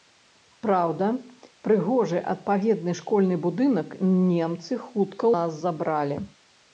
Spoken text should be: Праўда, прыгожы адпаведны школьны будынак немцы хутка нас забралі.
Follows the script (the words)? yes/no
yes